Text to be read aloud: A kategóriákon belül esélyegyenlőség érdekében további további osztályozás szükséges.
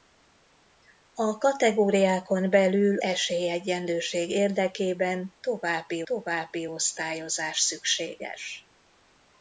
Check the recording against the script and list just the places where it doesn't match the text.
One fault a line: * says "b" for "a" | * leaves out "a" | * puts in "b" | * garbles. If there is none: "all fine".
all fine